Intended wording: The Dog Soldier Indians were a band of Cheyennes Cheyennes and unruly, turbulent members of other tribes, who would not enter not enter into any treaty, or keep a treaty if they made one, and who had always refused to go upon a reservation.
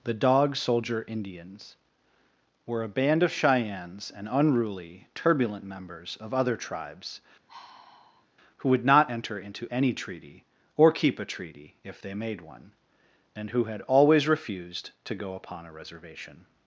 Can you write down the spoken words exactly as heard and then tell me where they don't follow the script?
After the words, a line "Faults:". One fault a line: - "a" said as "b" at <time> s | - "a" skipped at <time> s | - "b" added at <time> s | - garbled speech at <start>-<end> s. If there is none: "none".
The Dog Soldier Indians were a band of Cheyennes and unruly, turbulent members of other tribes, who would not enter into any treaty, or keep a treaty if they made one, and who had always refused to go upon a reservation.
Faults:
- "Cheyennes" skipped at 4.1 s
- "not enter" skipped at 9.4 s